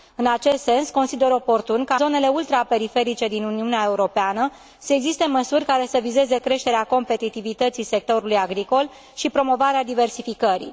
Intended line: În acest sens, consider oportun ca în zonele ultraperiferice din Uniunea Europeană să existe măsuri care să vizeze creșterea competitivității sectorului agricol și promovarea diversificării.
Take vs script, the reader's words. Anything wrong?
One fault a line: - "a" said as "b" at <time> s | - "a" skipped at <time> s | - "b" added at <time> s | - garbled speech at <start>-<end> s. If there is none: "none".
- "în" skipped at 1.9 s